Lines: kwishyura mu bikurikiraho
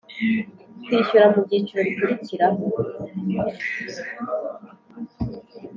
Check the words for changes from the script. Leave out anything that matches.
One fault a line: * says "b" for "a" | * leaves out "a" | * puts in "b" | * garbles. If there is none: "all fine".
* puts in "byiciro"